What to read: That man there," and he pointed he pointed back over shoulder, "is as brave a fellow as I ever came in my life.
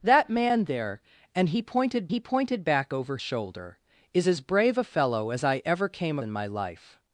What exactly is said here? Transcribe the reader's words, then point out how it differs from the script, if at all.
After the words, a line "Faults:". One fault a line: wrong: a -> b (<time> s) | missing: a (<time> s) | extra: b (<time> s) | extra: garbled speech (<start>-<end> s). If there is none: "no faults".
That man there," and he pointed he pointed back over shoulder, "is as brave a fellow as I ever came in my life.
Faults:
no faults